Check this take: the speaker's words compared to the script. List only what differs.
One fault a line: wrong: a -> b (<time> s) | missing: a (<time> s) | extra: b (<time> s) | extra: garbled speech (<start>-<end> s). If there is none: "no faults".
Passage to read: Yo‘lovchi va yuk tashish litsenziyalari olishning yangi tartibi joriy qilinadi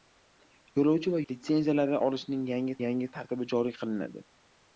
missing: yuk tashish (1.2 s)
extra: yangi (2.9 s)